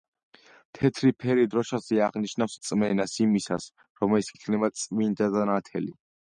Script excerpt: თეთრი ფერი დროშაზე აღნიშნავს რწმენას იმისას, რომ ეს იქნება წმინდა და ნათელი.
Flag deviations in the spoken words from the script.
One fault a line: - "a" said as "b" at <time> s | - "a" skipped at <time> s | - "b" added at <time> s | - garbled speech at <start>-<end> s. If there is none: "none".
none